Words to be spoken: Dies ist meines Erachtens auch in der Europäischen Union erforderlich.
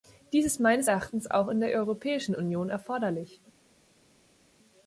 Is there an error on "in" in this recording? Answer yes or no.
no